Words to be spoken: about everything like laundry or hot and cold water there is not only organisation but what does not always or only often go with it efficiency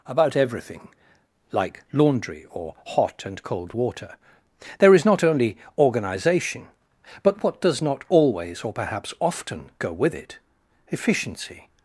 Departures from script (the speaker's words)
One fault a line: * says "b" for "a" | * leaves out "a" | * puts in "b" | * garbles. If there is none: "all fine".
* says "perhaps" for "only"